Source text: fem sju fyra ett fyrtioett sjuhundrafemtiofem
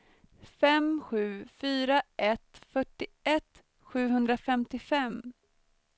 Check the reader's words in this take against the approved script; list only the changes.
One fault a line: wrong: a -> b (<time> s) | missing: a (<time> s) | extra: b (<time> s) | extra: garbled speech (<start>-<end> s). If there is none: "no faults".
no faults